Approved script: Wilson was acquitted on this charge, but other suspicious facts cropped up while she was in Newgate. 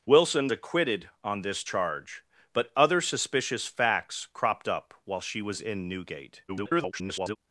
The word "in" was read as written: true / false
true